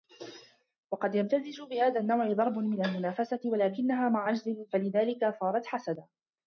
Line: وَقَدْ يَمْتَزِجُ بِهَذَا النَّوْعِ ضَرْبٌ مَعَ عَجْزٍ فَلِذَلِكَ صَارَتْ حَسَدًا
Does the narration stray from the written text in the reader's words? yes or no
yes